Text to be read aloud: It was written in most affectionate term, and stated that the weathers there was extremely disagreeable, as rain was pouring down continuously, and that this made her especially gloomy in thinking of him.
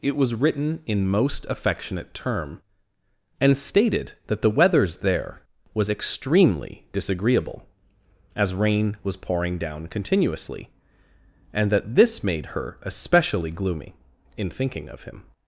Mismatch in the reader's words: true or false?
false